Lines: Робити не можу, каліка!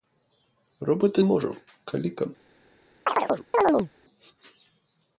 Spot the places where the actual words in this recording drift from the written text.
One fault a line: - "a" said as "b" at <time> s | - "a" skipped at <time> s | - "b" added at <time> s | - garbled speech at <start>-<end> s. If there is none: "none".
- "не" skipped at 1.2 s